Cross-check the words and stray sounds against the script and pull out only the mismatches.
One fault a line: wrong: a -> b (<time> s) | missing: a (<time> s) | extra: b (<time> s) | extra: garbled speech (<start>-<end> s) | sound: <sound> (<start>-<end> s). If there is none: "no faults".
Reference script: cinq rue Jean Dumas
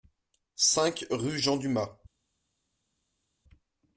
no faults